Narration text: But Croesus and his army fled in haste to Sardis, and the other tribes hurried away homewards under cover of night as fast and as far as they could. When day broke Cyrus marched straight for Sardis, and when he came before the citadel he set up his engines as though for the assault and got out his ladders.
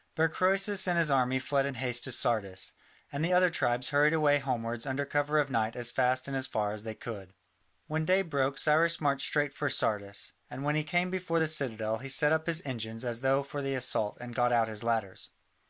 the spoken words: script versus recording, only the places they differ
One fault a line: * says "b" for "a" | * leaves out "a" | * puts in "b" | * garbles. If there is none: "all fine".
all fine